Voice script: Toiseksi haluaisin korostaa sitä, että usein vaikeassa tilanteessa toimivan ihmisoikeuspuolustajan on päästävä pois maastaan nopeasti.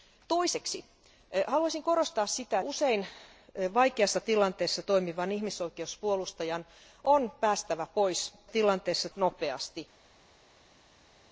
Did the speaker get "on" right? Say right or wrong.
right